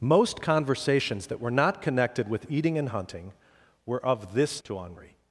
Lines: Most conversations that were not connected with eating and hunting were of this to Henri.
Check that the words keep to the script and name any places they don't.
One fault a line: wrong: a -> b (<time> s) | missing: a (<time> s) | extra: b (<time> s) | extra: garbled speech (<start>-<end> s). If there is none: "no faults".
no faults